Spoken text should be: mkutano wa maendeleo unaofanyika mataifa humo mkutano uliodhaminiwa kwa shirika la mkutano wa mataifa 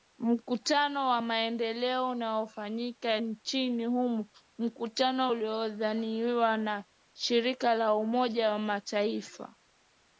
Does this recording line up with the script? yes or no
no